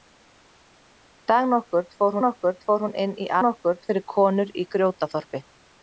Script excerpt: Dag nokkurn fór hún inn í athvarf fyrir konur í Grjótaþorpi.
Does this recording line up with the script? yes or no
no